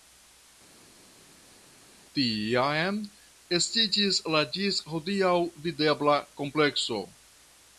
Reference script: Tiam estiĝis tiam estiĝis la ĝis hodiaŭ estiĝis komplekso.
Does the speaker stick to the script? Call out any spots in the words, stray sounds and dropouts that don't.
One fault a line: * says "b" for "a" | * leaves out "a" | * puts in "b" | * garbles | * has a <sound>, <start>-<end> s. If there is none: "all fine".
* leaves out "tiam estiĝis"
* says "videbla" for "estiĝis"